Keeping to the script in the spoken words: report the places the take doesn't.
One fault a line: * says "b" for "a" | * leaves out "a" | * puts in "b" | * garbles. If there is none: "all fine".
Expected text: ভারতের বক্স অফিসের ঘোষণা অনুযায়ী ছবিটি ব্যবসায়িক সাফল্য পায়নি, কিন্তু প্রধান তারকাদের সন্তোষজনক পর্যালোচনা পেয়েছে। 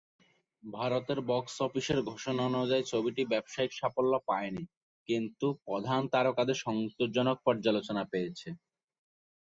all fine